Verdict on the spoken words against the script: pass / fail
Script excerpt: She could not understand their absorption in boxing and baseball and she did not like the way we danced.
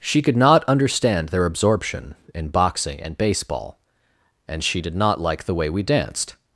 pass